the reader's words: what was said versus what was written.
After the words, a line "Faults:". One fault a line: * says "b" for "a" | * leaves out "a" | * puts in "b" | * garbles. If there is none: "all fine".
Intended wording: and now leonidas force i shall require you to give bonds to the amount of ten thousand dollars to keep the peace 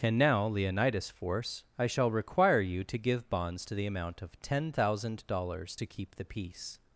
and now leonidas force i shall require you to give bonds to the amount of ten thousand dollars to keep the peace
Faults:
all fine